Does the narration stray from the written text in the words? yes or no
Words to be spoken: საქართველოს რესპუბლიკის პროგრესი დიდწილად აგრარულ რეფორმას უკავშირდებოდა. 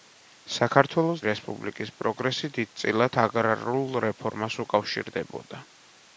no